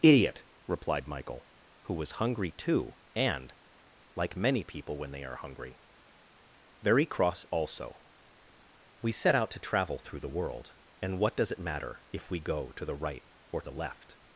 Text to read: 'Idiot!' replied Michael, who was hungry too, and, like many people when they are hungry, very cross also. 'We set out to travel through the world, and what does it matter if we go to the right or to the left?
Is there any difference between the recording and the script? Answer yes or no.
yes